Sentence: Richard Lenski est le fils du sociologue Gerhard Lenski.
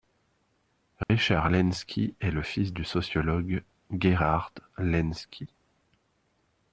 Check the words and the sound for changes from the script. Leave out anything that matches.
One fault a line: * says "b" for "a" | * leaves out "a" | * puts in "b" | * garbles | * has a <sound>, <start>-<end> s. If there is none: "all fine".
* has a dropout, 1.0-1.1 s